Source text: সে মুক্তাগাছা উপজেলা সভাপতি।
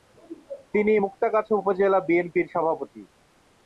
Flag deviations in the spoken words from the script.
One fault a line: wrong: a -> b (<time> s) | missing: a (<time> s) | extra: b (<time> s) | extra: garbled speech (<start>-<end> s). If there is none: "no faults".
wrong: সে -> তিনি (0.7 s)
extra: বিএনপির (2.1 s)